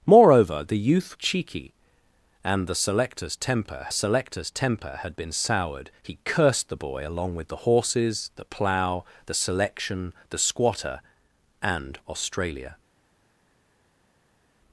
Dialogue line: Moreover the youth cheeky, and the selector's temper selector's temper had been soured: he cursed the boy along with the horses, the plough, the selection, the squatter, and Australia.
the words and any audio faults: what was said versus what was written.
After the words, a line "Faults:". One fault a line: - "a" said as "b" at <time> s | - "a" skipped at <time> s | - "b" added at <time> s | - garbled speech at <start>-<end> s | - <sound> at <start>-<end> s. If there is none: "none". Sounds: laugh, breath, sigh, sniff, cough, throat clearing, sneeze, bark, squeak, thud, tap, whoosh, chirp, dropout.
Moreover the youth cheeky, and the selector's temper selector's temper had been soured: he cursed the boy along with the horses, the plough, the selection, the squatter, and Australia.
Faults:
none